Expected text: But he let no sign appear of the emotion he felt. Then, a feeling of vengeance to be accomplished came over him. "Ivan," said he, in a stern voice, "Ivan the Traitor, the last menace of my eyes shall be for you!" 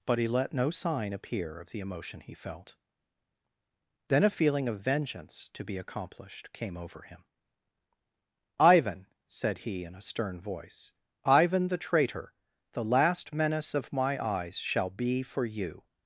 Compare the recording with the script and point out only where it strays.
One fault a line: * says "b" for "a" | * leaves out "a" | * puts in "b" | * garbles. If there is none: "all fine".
all fine